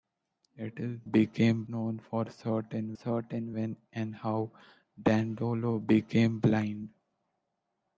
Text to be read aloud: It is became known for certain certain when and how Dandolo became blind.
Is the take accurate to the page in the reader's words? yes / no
yes